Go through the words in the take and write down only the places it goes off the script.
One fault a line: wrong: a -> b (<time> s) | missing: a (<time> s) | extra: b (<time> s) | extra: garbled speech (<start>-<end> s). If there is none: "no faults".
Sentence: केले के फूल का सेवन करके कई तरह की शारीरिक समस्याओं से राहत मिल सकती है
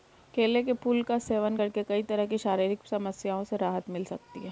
no faults